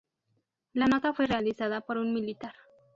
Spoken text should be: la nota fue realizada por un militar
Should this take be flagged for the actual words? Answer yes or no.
no